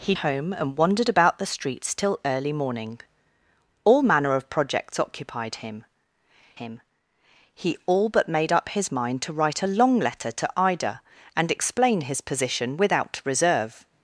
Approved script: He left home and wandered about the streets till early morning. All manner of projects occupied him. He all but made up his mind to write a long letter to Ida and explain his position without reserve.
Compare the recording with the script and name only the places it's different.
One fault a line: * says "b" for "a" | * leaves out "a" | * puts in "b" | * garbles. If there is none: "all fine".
* leaves out "left"
* puts in "him"